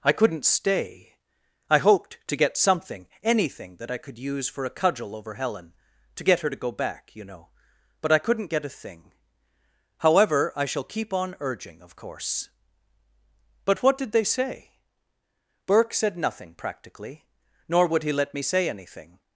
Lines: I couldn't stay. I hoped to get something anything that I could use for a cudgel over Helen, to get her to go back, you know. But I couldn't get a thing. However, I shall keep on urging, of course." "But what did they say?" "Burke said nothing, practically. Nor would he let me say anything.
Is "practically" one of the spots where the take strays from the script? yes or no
no